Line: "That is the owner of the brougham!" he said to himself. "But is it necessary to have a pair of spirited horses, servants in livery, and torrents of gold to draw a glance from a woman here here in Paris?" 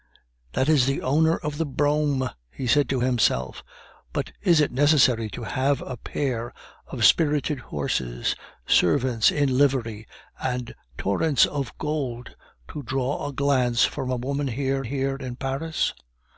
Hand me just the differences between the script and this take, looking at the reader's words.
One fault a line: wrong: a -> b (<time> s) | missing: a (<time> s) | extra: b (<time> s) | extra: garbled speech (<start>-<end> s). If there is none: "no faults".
no faults